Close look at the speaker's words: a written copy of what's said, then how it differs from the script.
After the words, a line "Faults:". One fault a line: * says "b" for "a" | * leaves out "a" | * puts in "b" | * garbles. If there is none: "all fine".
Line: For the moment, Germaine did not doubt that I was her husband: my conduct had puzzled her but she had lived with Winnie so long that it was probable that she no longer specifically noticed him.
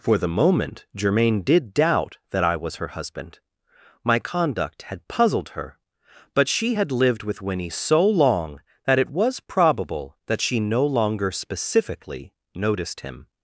For the moment, Germaine did doubt that I was her husband: my conduct had puzzled her but she had lived with Winnie so long that it was probable that she no longer specifically noticed him.
Faults:
* leaves out "not"